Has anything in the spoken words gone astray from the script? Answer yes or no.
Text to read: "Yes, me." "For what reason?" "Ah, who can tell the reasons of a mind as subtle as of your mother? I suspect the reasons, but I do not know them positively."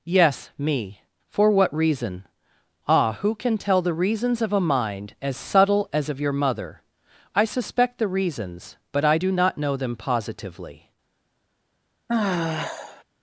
no